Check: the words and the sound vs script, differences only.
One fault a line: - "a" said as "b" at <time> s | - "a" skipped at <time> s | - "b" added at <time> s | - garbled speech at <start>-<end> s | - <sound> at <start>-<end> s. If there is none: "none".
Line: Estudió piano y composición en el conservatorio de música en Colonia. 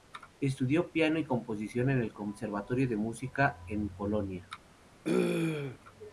- throat clearing at 5.0-5.8 s